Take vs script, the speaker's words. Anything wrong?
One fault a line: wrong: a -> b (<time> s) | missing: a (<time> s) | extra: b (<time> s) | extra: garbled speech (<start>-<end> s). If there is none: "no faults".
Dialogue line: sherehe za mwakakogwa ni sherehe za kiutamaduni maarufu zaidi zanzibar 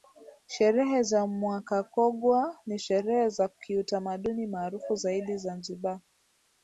no faults